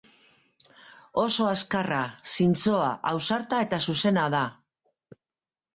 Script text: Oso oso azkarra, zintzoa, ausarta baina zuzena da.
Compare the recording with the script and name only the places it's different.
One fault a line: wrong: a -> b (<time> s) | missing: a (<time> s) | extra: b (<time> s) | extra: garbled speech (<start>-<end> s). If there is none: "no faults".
missing: oso (1.4 s)
wrong: baina -> eta (3.7 s)